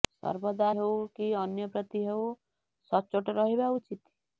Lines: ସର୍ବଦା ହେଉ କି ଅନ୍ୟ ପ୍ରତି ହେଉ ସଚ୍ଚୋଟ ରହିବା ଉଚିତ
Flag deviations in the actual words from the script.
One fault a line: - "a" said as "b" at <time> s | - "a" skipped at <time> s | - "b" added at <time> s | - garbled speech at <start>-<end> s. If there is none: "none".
none